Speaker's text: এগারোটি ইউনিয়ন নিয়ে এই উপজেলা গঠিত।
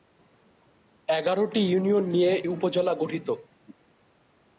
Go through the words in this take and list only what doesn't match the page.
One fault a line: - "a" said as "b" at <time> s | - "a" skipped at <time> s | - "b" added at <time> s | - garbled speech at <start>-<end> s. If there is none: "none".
- "এই" skipped at 2.3 s